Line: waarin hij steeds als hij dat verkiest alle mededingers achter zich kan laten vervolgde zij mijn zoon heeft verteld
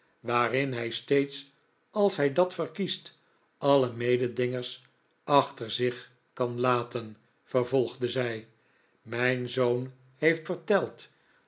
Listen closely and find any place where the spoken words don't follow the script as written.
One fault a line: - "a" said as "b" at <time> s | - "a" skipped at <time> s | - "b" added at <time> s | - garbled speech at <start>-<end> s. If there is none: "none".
none